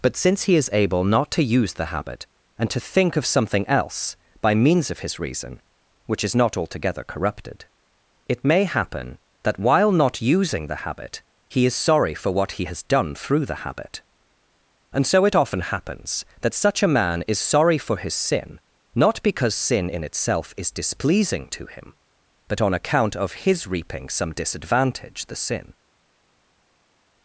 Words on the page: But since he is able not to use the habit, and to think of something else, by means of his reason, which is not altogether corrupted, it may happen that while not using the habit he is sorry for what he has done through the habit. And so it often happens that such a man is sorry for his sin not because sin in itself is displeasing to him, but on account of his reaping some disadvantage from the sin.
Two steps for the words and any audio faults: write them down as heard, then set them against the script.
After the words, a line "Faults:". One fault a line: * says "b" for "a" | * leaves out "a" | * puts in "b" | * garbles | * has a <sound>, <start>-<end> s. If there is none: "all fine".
But since he is able not to use the habit, and to think of something else, by means of his reason, which is not altogether corrupted, it may happen that while not using the habit he is sorry for what he has done through the habit. And so it often happens that such a man is sorry for his sin not because sin in itself is displeasing to him, but on account of his reaping some disadvantage the sin.
Faults:
* leaves out "from"